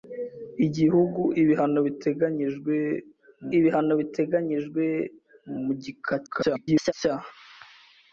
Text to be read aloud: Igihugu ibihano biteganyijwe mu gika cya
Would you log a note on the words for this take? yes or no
yes